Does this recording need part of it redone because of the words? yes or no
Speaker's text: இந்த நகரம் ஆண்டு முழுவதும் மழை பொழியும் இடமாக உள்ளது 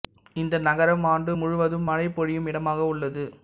no